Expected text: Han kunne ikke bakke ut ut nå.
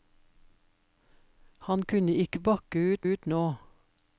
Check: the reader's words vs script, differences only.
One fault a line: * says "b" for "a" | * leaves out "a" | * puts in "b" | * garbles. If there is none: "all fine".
all fine